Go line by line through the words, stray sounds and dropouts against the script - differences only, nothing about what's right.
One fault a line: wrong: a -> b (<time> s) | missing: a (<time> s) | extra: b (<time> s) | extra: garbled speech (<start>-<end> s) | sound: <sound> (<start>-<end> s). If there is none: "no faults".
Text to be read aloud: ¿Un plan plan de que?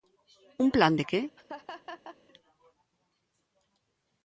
missing: plan (0.9 s)
sound: laugh (1.4-2.2 s)